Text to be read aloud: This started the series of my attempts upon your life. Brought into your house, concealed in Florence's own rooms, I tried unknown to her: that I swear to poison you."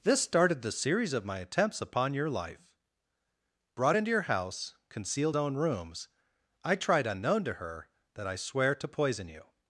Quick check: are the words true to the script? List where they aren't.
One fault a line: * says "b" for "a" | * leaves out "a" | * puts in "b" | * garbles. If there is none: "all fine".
* leaves out "in Florence's"